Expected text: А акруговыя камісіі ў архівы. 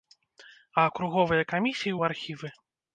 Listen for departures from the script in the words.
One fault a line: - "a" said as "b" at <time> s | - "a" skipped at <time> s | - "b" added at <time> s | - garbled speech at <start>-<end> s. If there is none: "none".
none